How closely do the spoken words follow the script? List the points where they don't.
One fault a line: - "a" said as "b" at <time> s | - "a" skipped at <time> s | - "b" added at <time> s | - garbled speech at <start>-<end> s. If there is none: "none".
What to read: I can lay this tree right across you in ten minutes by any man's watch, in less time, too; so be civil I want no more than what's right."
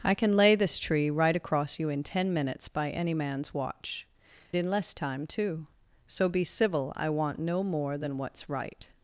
none